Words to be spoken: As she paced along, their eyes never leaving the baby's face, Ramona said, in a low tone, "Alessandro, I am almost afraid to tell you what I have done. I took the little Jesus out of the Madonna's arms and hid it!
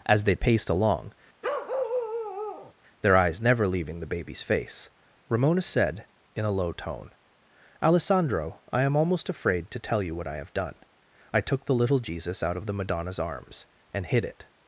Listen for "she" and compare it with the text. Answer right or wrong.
wrong